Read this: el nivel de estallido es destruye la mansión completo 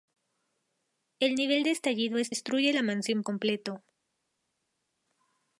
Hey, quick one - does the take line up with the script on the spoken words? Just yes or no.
yes